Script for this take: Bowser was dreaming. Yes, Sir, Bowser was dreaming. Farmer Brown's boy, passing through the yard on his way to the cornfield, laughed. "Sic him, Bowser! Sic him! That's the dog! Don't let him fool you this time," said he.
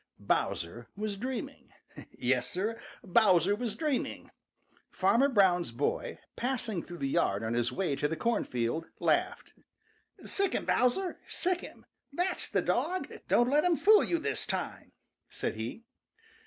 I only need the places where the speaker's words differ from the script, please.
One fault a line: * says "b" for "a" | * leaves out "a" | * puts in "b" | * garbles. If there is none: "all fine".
all fine